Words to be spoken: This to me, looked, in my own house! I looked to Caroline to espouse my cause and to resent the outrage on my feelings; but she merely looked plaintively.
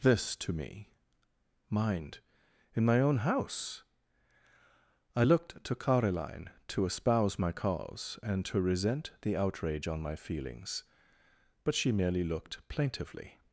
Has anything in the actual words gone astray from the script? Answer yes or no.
yes